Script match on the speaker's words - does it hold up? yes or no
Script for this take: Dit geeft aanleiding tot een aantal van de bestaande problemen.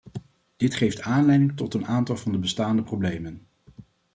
yes